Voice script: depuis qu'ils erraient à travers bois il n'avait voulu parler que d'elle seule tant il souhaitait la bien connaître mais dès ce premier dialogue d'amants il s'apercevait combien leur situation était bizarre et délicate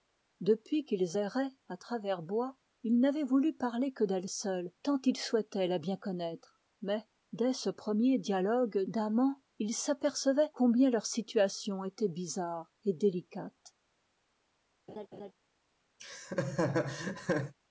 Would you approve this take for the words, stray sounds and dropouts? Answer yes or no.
no